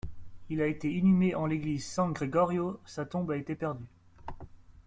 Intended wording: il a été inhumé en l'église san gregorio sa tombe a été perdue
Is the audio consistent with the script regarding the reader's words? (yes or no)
yes